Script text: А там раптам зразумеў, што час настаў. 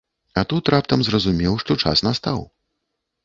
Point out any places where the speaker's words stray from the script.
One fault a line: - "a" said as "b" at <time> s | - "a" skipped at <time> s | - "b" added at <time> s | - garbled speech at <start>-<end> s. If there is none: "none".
- "там" said as "тут" at 0.5 s